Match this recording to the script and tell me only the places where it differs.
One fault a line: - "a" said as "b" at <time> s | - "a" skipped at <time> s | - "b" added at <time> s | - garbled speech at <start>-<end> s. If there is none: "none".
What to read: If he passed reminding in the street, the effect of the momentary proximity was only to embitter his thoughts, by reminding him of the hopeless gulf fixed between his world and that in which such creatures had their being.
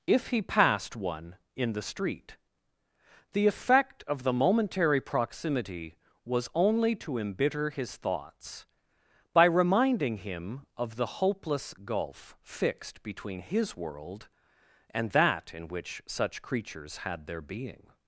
- "reminding" said as "one" at 0.9 s